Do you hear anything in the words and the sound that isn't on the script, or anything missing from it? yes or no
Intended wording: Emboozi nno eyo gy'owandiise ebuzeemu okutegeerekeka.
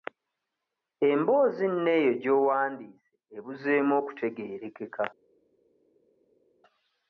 no